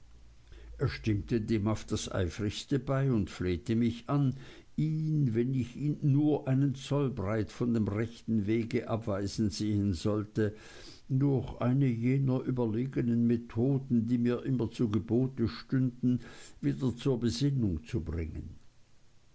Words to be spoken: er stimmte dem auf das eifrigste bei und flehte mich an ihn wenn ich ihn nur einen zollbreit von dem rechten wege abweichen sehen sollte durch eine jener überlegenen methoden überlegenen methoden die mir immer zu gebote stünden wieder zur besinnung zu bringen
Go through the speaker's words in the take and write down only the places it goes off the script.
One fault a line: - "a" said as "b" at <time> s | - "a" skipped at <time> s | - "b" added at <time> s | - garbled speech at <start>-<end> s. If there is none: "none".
- "überlegenen methoden" skipped at 14.1 s